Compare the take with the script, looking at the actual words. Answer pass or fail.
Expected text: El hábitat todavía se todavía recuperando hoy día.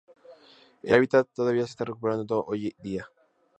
fail